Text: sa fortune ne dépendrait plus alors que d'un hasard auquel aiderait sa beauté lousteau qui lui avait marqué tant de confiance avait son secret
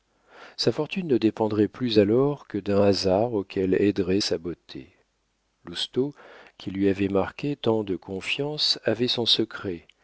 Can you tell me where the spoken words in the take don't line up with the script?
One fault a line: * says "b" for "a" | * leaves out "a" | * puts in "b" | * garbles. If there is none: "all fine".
all fine